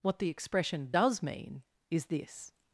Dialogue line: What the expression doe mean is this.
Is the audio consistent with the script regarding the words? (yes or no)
no